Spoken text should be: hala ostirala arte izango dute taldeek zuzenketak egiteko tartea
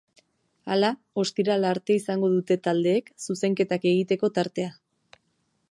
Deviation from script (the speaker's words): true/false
false